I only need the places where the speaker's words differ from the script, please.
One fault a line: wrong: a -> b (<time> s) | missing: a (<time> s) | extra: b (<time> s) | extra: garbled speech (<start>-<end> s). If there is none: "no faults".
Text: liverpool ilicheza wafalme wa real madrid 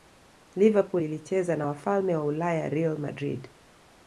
extra: na (1.6 s)
extra: ulaya (2.2 s)